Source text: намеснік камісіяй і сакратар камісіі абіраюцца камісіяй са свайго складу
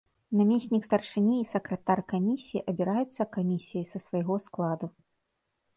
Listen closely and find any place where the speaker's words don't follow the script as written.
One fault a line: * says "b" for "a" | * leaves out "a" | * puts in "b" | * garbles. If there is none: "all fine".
* says "старшыні" for "камісіяй"